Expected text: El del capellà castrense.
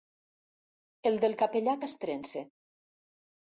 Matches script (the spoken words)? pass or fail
pass